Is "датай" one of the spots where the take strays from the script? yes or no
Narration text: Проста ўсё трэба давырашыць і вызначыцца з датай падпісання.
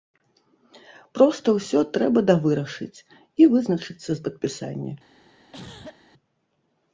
yes